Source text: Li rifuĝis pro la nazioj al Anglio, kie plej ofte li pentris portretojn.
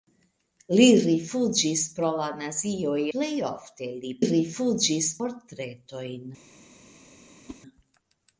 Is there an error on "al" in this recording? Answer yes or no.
yes